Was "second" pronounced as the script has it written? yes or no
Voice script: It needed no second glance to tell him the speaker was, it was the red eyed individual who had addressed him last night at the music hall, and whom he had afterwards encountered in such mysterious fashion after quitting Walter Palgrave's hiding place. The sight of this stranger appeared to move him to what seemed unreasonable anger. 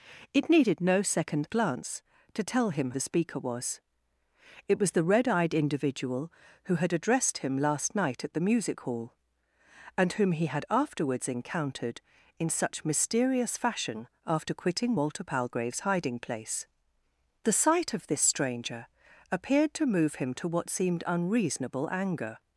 yes